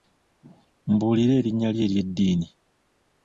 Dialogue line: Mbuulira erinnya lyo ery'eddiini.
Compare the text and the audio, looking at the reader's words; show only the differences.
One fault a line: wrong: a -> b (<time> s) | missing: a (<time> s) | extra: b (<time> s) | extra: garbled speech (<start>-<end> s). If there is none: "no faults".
no faults